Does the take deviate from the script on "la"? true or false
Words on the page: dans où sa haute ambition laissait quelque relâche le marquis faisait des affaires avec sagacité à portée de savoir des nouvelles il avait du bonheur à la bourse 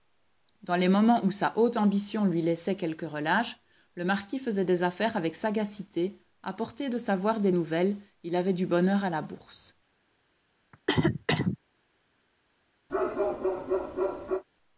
false